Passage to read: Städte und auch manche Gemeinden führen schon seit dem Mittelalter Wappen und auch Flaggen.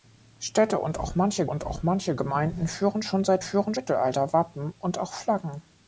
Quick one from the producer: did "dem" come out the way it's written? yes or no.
no